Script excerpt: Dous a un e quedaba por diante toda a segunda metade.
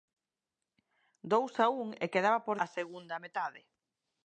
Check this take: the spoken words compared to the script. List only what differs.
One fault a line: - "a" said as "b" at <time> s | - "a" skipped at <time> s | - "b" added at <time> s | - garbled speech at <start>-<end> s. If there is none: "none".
- "diante toda" skipped at 2.6 s